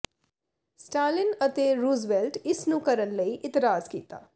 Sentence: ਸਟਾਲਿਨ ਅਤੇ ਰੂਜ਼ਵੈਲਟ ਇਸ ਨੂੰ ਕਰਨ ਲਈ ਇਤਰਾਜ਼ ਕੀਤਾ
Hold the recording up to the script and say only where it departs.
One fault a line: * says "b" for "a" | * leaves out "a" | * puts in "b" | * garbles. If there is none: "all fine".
all fine